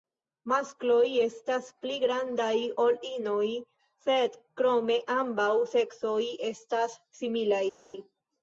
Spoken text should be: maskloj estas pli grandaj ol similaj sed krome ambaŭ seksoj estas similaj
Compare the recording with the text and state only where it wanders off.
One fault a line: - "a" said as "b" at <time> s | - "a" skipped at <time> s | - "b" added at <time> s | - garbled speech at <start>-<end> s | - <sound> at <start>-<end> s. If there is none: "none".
- "similaj" said as "inoj" at 3.1 s